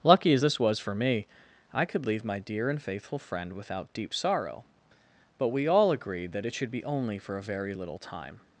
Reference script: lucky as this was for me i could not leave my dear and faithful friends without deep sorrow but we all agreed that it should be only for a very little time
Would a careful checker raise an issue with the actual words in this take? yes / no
yes